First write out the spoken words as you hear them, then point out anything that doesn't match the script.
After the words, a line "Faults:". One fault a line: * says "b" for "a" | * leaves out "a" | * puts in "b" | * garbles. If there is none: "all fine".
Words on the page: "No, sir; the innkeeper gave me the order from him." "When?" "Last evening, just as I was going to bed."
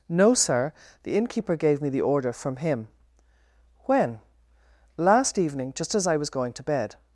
"No, sir; the innkeeper gave me the order from him." "When?" "Last evening, just as I was going to bed."
Faults:
all fine